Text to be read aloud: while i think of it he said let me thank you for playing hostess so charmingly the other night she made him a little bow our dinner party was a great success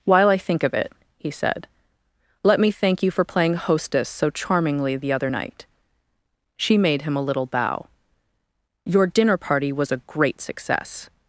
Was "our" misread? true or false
true